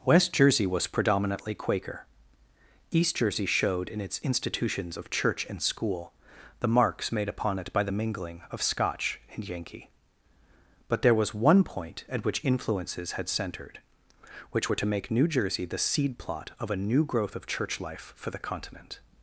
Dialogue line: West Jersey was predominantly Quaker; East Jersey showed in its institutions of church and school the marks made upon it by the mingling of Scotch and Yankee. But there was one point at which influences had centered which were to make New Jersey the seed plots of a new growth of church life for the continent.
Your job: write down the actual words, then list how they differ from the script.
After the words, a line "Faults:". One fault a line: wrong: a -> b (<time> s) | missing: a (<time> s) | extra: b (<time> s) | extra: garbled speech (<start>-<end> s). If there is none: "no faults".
West Jersey was predominantly Quaker; East Jersey showed in its institutions of church and school the marks made upon it by the mingling of Scotch and Yankee. But there was one point at which influences had centered which were to make New Jersey the seed plot of a new growth of church life for the continent.
Faults:
wrong: plots -> plot (16.2 s)